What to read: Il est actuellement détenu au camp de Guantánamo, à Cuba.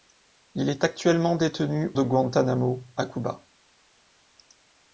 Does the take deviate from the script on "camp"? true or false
true